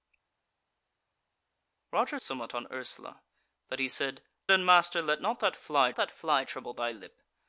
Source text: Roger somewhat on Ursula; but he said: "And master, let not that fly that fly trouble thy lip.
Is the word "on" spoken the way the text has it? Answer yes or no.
yes